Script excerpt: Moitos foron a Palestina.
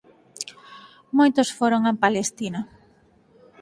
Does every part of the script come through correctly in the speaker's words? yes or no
yes